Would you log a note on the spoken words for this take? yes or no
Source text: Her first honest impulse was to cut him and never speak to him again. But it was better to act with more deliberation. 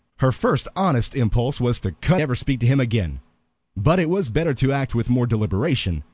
yes